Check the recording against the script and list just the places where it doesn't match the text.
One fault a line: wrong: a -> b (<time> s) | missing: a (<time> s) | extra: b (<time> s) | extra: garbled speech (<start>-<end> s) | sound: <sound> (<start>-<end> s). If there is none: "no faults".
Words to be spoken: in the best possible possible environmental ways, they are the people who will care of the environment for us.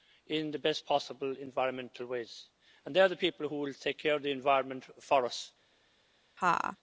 missing: possible (1.3 s)
extra: and (2.9 s)
extra: take (3.8 s)
sound: laugh (6.4-6.8 s)